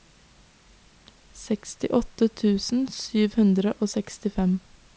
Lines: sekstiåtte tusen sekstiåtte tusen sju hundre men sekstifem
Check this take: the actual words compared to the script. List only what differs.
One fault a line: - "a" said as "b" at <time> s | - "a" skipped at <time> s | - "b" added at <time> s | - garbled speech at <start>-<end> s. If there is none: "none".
- "sekstiåtte tusen" skipped at 2.8 s
- "men" said as "og" at 3.8 s